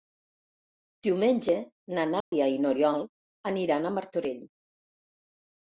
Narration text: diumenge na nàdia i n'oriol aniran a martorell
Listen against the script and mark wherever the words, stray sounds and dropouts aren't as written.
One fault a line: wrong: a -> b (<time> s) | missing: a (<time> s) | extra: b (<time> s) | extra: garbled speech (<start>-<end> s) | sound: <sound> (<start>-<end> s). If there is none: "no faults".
sound: dropout (2.2-2.3 s)